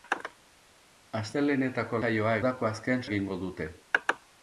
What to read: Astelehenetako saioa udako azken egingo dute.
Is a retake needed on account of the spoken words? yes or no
no